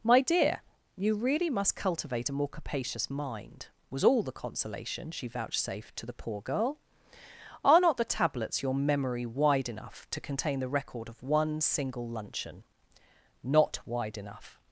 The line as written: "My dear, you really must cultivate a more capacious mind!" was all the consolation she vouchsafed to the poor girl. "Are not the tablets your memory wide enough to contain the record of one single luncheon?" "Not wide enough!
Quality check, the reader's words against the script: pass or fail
pass